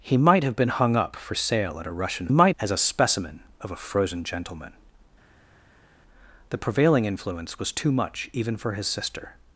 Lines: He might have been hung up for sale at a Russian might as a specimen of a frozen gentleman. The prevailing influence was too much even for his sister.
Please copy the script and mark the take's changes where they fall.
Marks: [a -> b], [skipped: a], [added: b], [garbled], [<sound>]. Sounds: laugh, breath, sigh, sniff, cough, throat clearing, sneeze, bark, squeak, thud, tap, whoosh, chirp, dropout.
He might have been hung up for sale at a Russian might as a specimen of a frozen gentleman. The prevailing influence was too much even for his sister.